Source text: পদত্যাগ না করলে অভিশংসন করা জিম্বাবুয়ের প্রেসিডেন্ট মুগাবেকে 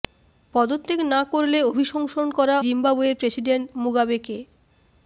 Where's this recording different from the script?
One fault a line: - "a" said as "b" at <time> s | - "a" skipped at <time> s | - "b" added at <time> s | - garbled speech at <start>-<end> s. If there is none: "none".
none